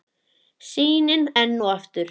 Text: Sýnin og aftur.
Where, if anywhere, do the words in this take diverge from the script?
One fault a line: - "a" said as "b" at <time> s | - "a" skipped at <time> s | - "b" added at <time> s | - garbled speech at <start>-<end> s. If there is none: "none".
- "enn" added at 1.4 s